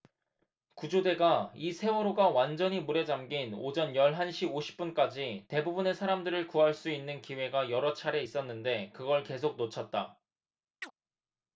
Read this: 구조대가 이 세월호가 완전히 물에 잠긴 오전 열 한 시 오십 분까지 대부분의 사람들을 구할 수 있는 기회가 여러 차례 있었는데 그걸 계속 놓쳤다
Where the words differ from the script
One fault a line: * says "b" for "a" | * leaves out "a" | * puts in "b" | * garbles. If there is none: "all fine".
all fine